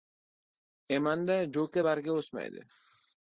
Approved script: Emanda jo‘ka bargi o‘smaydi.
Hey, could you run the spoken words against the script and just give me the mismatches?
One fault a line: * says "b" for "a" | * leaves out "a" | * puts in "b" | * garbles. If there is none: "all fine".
all fine